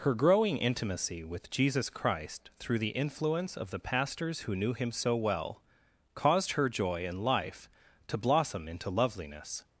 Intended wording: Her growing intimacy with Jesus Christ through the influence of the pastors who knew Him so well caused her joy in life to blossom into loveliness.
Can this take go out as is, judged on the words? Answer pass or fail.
pass